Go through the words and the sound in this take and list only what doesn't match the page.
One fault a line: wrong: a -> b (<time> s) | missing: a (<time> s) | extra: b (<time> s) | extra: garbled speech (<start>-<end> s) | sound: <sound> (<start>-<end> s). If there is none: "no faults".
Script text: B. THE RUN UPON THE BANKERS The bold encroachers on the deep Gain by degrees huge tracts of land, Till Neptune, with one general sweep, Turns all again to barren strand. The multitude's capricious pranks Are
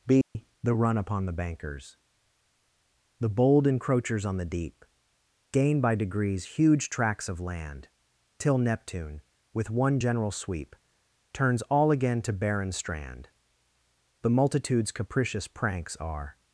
sound: dropout (0.2-0.4 s)